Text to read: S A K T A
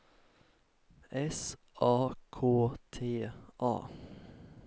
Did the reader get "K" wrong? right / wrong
right